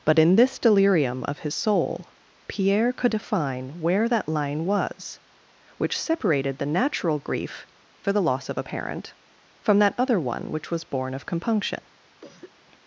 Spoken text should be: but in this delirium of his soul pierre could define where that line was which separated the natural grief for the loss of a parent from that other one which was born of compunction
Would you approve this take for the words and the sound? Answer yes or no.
no